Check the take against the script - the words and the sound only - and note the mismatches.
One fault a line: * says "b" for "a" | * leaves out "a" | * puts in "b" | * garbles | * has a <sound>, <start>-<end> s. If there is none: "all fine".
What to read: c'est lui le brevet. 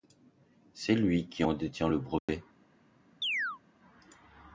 * puts in "qui en détient"
* has a dropout, 2.2-2.3 s
* has a chirp, 3.2-3.6 s